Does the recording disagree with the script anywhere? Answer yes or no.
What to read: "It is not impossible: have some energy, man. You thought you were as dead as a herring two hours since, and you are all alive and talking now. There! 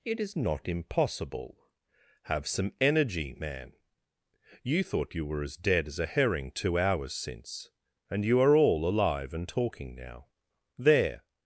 no